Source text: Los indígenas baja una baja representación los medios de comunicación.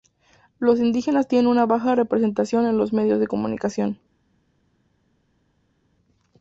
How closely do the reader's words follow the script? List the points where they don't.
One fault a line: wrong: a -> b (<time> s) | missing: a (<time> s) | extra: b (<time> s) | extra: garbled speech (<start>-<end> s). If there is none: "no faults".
wrong: baja -> tienen (1.3 s)
extra: en (2.6 s)